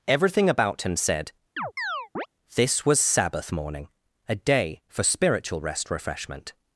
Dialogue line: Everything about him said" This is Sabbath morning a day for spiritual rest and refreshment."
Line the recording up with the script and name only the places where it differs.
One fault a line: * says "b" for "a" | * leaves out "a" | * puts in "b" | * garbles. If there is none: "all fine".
* says "was" for "is"
* leaves out "and"